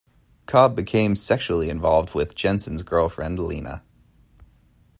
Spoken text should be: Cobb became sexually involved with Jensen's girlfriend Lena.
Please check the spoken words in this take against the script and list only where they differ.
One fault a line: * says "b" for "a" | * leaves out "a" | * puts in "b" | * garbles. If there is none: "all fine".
all fine